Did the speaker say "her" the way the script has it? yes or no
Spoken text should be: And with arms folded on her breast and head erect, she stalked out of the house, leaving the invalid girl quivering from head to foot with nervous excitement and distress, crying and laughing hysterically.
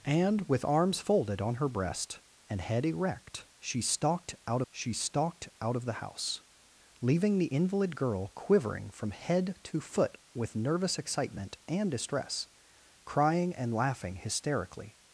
yes